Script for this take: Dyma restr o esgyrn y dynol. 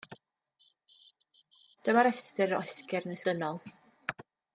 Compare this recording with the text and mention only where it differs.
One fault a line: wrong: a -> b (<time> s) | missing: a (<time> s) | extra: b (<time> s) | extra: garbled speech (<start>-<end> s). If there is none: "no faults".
no faults